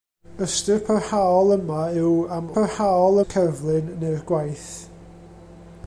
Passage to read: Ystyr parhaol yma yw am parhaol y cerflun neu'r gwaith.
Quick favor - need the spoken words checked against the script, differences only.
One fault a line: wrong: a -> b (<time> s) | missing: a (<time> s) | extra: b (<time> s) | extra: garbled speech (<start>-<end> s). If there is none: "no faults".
no faults